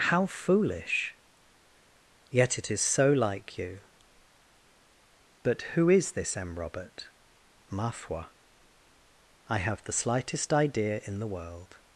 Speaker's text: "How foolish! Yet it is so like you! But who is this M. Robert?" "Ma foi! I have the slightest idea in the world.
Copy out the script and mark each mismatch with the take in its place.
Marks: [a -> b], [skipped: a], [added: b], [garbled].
"How foolish! Yet it is so like you! But who is this M. Robert?" "Ma foi! I have the slightest idea in the world.